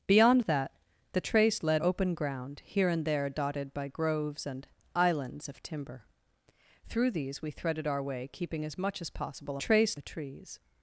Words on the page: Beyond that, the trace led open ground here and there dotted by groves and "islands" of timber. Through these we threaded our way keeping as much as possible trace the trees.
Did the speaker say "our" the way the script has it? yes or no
yes